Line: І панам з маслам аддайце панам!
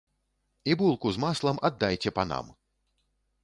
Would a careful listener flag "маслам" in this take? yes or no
no